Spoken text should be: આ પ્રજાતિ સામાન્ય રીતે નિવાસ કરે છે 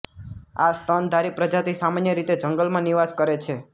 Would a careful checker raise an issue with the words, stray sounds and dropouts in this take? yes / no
yes